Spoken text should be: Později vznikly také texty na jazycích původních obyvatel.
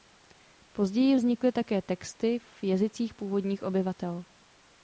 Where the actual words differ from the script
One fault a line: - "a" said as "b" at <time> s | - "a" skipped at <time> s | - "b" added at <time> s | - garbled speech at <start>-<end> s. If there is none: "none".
- "na" said as "v" at 2.4 s